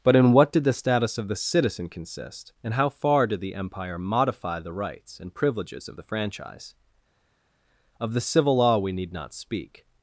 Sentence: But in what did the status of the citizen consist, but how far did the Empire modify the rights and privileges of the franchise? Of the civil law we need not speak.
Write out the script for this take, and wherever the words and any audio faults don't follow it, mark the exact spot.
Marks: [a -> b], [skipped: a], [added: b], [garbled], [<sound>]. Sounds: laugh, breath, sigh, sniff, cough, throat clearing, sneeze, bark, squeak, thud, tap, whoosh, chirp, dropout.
But in what did the status of the citizen consist, [but -> and] how far did the Empire modify the rights and privileges of the franchise? Of the civil law we need not speak.